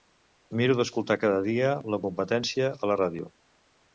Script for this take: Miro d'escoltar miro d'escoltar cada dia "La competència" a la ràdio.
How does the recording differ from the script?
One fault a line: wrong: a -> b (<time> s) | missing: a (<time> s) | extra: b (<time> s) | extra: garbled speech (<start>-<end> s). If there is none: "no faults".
missing: miro d'escoltar (1.2 s)